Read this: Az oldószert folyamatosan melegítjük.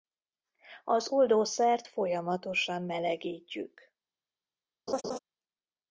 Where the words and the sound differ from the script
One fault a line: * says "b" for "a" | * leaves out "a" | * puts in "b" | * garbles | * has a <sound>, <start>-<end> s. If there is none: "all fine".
* has a laugh, 4.9-5.2 s